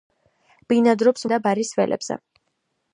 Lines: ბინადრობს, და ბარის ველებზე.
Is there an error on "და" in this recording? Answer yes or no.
no